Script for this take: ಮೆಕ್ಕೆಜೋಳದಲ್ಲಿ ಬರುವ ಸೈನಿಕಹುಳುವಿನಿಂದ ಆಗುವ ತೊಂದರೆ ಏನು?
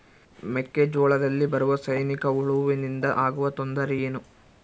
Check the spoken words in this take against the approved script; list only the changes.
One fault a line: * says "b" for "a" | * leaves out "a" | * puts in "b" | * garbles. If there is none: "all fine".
all fine